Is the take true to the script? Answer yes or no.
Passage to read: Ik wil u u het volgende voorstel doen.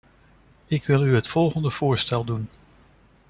no